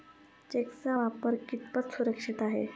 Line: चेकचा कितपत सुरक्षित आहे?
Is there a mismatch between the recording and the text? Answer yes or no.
yes